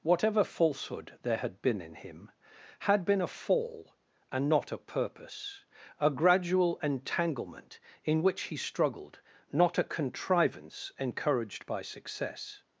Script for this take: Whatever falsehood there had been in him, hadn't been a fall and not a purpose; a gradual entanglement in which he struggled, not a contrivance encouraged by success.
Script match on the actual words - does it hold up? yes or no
no